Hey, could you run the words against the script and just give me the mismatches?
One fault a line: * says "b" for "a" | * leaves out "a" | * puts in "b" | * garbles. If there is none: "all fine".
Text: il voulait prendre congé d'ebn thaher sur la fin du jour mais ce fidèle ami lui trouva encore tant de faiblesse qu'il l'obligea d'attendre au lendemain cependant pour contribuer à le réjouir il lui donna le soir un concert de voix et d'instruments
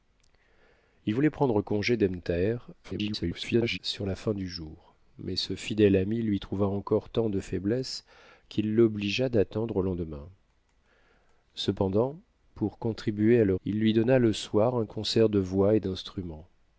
* garbles
* leaves out "réjouir"